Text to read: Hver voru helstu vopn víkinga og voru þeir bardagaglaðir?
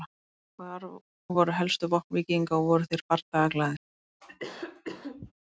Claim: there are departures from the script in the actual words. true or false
false